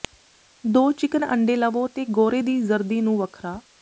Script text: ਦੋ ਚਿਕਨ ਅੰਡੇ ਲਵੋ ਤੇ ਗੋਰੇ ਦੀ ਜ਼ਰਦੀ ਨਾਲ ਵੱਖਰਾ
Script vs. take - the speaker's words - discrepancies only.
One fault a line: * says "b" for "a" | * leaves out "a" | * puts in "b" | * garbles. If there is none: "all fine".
* says "ਨੂੰ" for "ਨਾਲ"